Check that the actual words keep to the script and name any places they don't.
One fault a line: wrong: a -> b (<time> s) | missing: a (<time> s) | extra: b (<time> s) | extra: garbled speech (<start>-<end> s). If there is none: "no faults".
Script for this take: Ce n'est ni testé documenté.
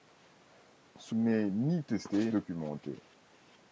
no faults